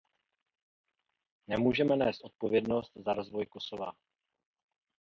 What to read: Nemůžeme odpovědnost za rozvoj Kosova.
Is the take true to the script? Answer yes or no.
no